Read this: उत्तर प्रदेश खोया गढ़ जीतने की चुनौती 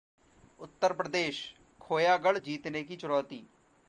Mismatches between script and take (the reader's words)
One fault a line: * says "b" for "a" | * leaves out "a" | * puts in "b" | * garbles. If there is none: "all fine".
all fine